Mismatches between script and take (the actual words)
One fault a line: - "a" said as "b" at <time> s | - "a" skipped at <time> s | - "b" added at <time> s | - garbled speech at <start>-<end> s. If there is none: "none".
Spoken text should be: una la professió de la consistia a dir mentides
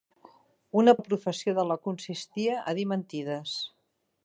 none